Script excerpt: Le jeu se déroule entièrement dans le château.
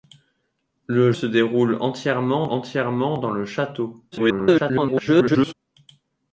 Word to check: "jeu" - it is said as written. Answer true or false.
false